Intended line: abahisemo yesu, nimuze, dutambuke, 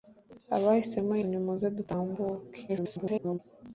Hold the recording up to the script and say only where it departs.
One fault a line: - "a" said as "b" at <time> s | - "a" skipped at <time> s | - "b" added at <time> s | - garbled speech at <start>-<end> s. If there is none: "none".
- "yesu" skipped at 1.1 s
- garbled speech at 2.7-3.4 s